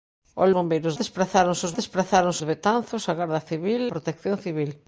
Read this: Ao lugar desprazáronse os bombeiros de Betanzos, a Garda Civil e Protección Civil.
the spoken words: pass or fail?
fail